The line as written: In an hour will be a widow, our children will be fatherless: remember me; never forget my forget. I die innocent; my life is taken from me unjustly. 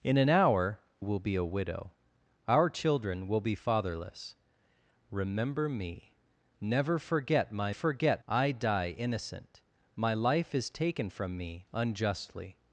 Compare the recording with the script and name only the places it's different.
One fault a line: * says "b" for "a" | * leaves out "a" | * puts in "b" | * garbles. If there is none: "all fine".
all fine